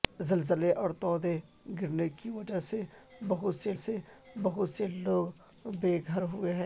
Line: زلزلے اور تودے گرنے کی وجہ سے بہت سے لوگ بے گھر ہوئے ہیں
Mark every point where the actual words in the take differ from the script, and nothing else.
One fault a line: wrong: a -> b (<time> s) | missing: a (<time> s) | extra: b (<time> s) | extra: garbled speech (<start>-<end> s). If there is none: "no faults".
extra: سے بہت سے (3.7 s)